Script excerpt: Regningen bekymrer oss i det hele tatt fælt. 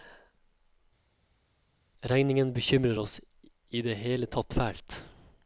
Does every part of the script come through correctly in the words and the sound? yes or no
yes